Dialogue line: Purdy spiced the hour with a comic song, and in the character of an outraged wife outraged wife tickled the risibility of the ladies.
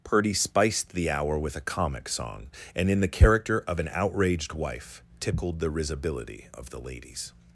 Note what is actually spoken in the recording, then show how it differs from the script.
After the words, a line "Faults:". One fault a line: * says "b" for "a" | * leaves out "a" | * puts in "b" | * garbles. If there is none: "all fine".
Purdy spiced the hour with a comic song, and in the character of an outraged wife tickled the risibility of the ladies.
Faults:
* leaves out "outraged wife"